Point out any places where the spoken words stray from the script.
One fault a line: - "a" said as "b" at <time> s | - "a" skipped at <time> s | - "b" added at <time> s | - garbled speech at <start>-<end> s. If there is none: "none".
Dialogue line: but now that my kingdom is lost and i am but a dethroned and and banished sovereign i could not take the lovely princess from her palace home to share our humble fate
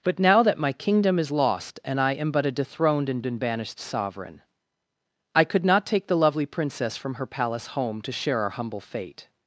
none